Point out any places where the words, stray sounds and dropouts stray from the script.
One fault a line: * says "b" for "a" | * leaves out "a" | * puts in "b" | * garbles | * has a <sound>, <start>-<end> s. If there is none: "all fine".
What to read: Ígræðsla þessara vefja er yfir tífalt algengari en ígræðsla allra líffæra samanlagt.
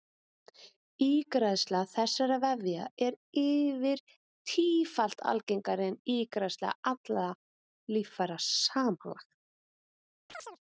* has a chirp, 10.3-10.6 s